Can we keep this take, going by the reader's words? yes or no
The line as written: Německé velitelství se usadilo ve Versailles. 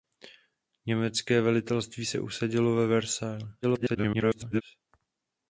no